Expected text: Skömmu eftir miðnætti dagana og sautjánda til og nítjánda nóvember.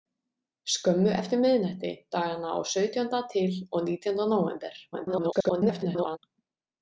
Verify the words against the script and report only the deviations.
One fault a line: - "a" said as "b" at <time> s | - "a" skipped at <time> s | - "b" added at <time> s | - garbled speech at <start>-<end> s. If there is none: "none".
- garbled speech at 4.9-6.2 s